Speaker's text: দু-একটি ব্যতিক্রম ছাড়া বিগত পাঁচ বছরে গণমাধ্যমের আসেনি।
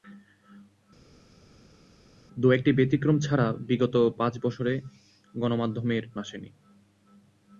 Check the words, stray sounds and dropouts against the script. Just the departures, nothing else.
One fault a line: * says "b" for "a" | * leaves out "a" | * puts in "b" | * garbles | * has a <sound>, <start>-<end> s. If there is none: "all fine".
all fine